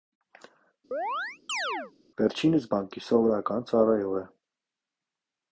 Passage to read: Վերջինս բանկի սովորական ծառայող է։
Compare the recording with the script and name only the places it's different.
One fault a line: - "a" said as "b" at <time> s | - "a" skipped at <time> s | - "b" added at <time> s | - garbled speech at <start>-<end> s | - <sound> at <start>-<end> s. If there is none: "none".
- chirp at 0.9-1.9 s